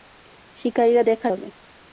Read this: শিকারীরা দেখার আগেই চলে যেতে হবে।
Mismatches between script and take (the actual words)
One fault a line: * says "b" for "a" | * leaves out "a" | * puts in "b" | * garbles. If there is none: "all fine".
* leaves out "আগেই চলে যেতে"